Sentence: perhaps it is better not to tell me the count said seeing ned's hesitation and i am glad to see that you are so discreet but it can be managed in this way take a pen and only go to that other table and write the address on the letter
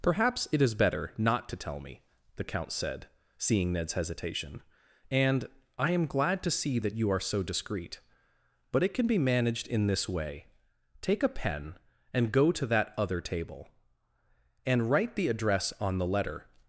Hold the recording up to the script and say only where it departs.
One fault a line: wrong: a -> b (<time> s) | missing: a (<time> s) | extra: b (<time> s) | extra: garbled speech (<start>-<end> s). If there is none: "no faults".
missing: only (12.3 s)